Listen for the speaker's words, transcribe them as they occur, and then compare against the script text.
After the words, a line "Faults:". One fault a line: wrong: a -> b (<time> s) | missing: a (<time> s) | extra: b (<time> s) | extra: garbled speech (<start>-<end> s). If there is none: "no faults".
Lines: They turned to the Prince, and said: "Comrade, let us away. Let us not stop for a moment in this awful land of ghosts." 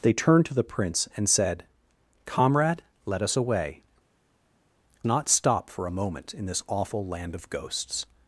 They turned to the Prince, and said: "Comrade, let us away. Not stop for a moment in this awful land of ghosts."
Faults:
missing: Let us (3.8 s)